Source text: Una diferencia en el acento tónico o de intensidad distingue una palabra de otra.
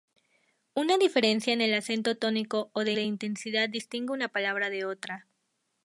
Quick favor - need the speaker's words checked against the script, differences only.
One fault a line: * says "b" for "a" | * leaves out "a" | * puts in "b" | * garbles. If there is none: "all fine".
* puts in "de"